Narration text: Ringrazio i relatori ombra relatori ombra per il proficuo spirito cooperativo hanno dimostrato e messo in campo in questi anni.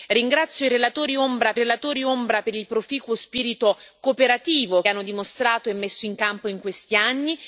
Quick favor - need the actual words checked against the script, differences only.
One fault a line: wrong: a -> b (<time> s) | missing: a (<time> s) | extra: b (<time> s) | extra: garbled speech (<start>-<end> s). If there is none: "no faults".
no faults